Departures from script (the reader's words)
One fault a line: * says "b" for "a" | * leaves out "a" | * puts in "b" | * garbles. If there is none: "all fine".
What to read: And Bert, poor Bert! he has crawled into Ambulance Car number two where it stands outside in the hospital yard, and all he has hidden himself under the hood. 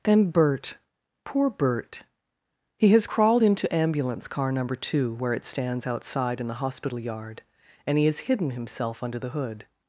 * leaves out "all"